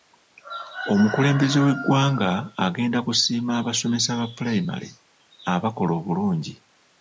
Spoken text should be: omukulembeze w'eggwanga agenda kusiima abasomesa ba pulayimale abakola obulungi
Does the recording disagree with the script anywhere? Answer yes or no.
no